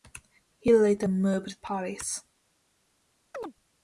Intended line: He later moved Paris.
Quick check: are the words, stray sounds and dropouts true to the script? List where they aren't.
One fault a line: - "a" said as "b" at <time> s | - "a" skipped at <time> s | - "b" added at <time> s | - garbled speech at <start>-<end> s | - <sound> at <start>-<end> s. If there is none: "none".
- chirp at 3.3-3.5 s